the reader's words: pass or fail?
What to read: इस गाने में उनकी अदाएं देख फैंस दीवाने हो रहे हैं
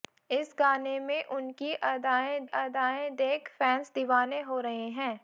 fail